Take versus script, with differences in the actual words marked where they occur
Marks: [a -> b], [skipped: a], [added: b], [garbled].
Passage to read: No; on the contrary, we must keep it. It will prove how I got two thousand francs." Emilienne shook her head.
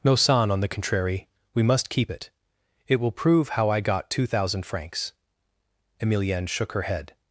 No; [added: son] on the contrary, we must keep it. It will prove how I got two thousand francs." Emilienne shook her head.